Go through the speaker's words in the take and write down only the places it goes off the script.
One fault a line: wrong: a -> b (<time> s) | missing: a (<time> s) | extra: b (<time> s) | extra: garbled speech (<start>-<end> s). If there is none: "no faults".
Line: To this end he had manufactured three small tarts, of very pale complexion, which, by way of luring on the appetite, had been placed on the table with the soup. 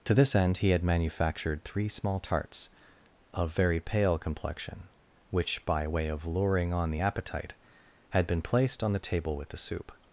no faults